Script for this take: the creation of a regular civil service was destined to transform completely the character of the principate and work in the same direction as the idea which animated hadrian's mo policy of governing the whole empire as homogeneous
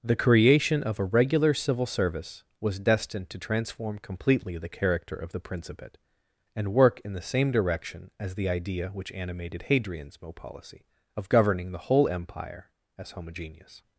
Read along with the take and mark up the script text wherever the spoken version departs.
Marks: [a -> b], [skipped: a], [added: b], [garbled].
the creation of a regular civil service was destined to transform completely the character of the principate and work in the same direction as the idea which animated hadrian's mo policy of governing the whole empire as homogeneous